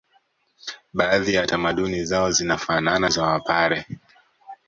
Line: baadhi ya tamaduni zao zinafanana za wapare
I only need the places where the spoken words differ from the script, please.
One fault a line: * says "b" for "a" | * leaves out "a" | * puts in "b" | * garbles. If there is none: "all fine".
all fine